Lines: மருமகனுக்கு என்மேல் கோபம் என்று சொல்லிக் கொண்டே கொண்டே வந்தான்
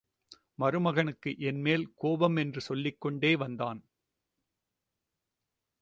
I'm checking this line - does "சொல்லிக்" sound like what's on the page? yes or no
yes